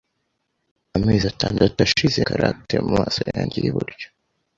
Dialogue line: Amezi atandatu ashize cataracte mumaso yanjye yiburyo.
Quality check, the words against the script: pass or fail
pass